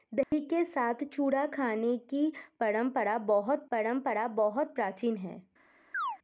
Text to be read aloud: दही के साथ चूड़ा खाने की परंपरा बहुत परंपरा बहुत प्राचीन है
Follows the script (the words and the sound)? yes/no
no